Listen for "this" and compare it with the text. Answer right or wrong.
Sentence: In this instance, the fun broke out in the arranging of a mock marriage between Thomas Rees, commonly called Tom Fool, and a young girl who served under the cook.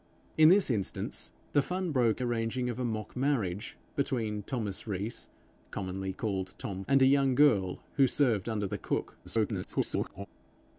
right